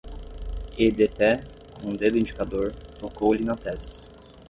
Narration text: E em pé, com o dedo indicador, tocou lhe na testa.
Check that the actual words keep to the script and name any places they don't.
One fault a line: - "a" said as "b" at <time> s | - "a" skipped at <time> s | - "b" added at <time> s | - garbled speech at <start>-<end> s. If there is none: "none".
- "em" said as "de" at 0.9 s